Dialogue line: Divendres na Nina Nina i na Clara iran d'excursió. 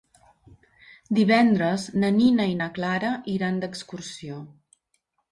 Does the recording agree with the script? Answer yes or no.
no